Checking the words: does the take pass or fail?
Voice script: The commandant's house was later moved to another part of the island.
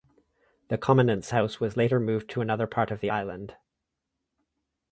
pass